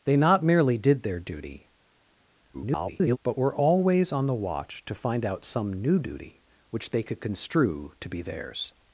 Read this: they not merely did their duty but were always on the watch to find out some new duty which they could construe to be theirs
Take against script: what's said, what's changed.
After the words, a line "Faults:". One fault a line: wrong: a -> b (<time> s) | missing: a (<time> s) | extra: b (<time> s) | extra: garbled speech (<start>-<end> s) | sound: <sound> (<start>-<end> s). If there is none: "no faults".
they not merely did their duty [garbled] but were always on the watch to find out some new duty which they could construe to be theirs
Faults:
extra: garbled speech (2.5-3.2 s)